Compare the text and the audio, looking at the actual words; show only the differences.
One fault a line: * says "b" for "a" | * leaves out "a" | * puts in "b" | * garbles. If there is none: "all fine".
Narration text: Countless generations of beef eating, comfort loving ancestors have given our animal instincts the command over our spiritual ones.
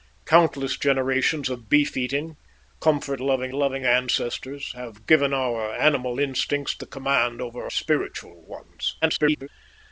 * puts in "loving"
* leaves out "our"
* garbles